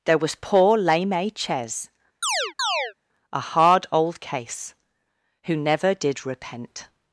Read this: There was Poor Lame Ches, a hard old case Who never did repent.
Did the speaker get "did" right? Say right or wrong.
right